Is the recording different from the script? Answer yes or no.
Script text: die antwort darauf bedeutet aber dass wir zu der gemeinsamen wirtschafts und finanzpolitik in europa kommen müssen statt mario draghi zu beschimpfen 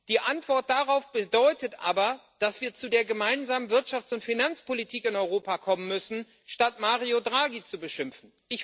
no